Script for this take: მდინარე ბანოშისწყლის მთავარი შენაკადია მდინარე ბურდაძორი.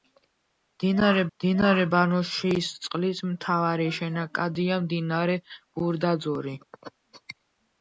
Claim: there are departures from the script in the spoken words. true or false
true